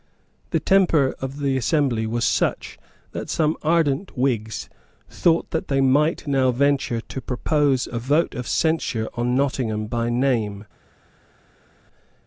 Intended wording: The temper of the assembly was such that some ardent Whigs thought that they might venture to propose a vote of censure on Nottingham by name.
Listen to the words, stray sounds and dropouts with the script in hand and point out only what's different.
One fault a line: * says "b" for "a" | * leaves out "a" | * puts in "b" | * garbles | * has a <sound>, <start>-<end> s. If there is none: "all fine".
* puts in "now"